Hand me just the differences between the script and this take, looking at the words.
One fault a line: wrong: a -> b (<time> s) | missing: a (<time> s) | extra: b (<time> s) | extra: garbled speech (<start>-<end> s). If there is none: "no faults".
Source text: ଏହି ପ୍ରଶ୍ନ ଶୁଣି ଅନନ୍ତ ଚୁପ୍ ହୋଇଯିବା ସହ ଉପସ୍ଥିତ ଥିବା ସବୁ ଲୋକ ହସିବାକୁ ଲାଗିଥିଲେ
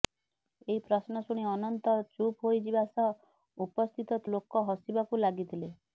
missing: ଥିବା ସବୁ (4.2 s)